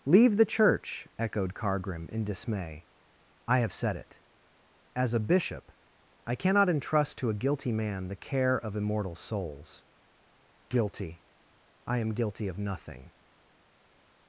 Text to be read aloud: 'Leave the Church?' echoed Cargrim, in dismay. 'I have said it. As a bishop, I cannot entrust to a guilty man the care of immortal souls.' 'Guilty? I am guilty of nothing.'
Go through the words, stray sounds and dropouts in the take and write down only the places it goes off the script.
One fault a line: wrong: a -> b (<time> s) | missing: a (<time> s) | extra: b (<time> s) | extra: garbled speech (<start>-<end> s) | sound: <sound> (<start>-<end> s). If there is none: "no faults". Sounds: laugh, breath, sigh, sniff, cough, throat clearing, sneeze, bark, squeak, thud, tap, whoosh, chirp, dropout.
no faults